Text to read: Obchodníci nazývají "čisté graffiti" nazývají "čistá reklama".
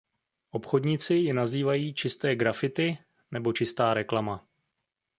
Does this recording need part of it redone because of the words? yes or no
yes